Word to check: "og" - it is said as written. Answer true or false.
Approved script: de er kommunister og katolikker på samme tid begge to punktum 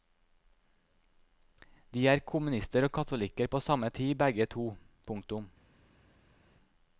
true